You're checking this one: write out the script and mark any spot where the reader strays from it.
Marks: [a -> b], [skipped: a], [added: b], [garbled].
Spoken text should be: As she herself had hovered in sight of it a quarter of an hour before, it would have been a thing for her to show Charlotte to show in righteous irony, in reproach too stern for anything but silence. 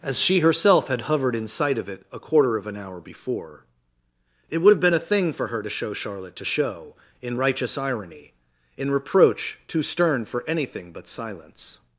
As she herself had hovered in sight of it a quarter of an hour before, it would have been a thing for her to show Charlotte to show in righteous irony, in reproach too stern for anything but silence.